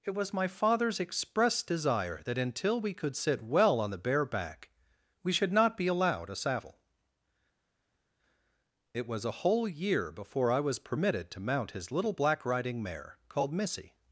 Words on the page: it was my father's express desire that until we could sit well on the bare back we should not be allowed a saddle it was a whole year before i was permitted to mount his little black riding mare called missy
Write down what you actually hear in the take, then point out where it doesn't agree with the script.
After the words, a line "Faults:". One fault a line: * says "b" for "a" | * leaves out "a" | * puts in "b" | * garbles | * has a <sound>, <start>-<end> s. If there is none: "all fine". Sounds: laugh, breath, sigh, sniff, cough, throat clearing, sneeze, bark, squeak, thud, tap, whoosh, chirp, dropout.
it was my father's express desire that until we could sit well on the bare back we should not be allowed a saddle it was a whole year before i was permitted to mount his little black riding mare called missy
Faults:
all fine